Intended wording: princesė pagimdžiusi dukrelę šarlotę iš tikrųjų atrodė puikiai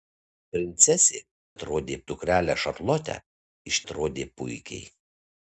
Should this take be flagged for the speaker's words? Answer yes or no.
yes